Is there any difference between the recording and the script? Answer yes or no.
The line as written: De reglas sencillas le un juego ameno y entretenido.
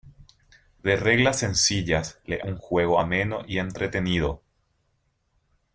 no